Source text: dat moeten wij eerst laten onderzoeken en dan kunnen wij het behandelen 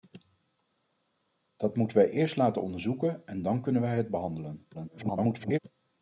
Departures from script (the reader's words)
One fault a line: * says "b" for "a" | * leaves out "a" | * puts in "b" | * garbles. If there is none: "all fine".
* garbles